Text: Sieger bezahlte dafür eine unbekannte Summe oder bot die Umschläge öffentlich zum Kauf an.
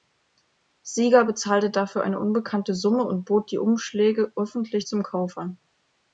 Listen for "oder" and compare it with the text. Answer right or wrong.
wrong